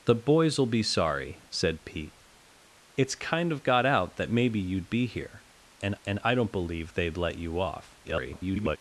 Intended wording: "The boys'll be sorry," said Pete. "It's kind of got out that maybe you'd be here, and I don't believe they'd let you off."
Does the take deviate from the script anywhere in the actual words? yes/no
yes